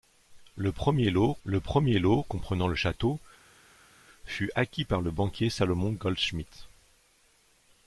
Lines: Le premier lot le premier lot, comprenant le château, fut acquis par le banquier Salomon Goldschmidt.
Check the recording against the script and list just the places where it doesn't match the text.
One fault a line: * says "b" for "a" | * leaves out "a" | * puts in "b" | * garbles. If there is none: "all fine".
all fine